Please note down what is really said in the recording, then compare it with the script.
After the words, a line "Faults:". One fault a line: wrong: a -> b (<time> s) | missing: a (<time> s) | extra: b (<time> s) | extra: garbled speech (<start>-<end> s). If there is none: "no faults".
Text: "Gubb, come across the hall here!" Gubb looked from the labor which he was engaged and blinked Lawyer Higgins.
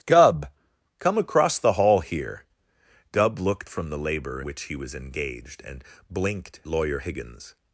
"Gubb, come across the hall here!" Gubb looked from the labor which he was engaged and blinked Lawyer Higgins.
Faults:
no faults